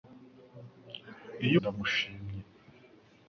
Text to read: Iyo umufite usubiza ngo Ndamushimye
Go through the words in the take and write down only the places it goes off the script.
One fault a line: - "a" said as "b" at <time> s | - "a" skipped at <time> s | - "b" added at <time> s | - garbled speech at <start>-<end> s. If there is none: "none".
- "umufite usubiza ngo" skipped at 1.6 s